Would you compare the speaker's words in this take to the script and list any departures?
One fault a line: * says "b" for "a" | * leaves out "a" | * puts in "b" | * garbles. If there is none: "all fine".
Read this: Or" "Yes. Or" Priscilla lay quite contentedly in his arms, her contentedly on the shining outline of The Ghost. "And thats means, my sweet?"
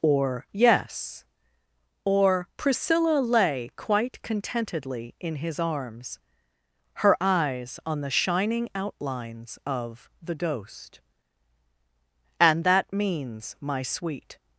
* says "eyes" for "contentedly"
* says "outlines" for "outline"
* says "that" for "thats"